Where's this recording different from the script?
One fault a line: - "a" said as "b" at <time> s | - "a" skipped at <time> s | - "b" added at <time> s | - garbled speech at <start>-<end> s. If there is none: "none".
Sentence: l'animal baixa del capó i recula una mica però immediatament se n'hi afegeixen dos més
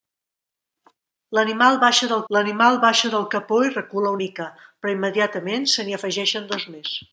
- "l'animal baixa del" added at 2.4 s
- "una" skipped at 4.1 s